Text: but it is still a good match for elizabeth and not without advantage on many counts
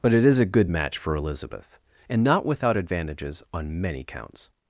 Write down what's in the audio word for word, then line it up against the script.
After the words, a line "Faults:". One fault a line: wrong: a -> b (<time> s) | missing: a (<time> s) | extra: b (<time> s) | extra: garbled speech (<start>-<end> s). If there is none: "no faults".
but it is a good match for elizabeth and not without advantages on many counts
Faults:
missing: still (0.4 s)
wrong: advantage -> advantages (2.8 s)